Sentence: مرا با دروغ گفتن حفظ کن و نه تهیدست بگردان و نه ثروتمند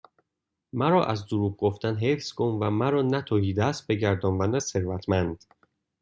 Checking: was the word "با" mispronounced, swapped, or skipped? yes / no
yes